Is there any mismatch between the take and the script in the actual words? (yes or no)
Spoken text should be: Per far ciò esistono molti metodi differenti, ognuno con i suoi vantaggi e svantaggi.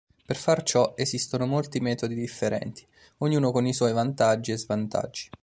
no